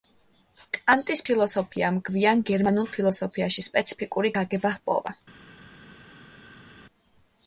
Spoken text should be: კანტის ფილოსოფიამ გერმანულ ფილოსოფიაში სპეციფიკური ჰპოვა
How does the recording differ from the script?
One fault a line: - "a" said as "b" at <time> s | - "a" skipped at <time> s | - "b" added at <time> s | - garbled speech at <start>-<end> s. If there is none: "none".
- "გვიან" added at 2.1 s
- "გაგება" added at 4.4 s